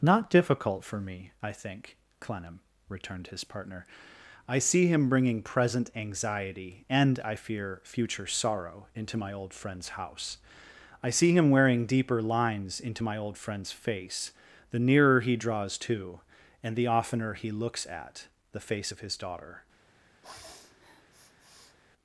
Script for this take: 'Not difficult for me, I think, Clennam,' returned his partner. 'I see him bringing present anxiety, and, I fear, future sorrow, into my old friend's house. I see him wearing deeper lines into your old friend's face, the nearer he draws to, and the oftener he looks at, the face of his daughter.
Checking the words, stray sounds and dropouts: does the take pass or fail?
fail